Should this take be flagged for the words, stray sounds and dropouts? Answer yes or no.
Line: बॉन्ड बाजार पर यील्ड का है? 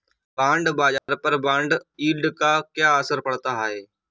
yes